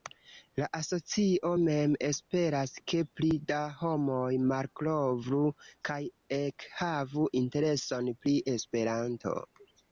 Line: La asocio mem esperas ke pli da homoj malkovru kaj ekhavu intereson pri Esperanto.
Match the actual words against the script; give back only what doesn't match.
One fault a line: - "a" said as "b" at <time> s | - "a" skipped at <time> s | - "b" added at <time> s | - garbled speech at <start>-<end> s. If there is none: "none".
none